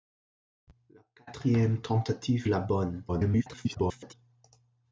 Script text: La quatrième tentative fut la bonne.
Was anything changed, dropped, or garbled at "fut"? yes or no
yes